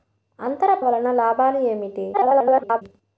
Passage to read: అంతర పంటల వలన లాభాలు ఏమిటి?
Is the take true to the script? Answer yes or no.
no